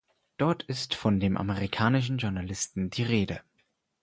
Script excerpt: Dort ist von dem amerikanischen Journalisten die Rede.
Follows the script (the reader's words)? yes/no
yes